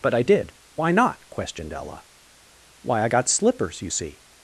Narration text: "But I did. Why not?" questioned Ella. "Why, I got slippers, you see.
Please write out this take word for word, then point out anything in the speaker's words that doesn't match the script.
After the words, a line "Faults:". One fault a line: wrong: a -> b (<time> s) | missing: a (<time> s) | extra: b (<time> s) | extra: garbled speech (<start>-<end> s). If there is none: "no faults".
"But I did. Why not?" questioned Ella. "Why, I got slippers, you see.
Faults:
no faults